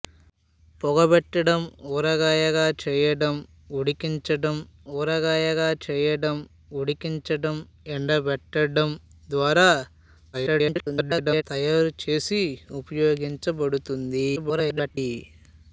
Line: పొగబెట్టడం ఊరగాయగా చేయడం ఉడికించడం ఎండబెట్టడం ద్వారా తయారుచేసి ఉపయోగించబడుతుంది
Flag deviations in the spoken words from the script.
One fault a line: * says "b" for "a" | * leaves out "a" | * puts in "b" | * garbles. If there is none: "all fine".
* puts in "ఊరగాయగా చేయడం ఉడికించడం"
* garbles
* garbles